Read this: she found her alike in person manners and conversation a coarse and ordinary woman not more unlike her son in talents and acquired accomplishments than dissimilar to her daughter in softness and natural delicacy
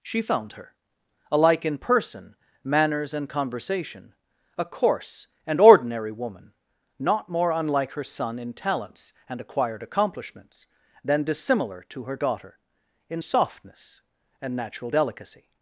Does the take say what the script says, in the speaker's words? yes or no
yes